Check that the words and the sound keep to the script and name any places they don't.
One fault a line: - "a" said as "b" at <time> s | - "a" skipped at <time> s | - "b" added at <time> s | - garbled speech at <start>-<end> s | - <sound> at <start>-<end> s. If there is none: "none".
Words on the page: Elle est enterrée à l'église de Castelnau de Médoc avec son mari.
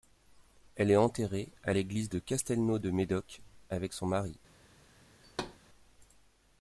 - thud at 5.2-5.6 s